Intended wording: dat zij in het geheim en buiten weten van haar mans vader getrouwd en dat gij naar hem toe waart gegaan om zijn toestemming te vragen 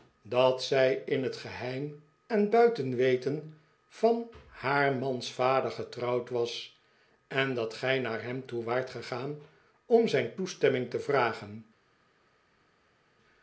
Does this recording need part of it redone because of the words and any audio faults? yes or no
yes